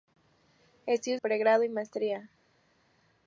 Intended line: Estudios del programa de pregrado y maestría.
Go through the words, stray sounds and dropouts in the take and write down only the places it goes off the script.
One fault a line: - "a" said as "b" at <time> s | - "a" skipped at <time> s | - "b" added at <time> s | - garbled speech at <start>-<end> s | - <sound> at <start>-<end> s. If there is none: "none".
- "del programa de" skipped at 1.2 s